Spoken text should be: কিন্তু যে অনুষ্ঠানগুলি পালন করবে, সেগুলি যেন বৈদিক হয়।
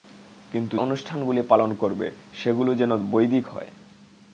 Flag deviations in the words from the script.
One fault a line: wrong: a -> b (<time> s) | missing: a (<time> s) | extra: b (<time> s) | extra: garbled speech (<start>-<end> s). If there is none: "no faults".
missing: যে (0.8 s)